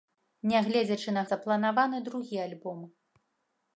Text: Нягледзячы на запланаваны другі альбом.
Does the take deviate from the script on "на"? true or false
false